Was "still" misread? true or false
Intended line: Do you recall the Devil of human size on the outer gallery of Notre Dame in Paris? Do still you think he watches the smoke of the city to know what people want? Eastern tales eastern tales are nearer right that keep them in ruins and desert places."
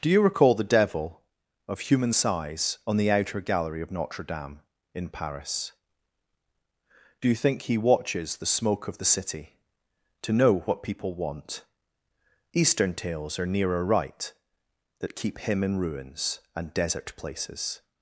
true